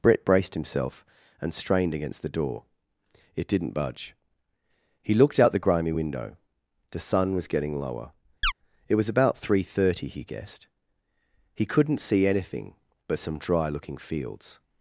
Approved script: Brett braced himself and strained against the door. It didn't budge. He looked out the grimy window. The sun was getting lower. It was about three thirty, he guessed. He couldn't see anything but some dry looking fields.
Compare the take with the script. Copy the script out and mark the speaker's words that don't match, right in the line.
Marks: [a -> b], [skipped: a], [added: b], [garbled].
Brett braced himself and strained against the door. It didn't budge. He looked out the grimy window. The sun was getting lower. It was about three thirty, he guessed. He couldn't see anything but some dry looking fields.